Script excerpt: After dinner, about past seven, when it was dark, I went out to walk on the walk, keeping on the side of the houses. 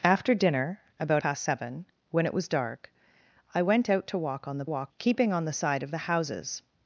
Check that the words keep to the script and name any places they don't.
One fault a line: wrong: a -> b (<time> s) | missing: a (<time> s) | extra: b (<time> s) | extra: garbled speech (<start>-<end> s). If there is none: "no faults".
no faults